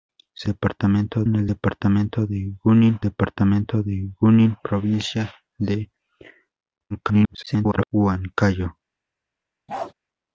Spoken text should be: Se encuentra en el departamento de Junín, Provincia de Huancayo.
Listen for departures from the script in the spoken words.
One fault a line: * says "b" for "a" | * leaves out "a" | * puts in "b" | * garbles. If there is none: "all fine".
* says "departamento" for "encuentra"
* puts in "departamento de Junín"
* garbles